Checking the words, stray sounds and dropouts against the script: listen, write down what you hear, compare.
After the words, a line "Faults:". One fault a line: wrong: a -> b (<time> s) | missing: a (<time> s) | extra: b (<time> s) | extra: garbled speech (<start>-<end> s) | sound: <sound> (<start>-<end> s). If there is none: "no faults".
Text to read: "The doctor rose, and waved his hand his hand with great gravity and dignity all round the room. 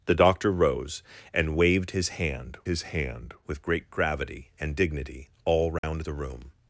"The doctor rose, and waved his hand his hand with great gravity and dignity all round the room.
Faults:
sound: dropout (5.8-5.8 s)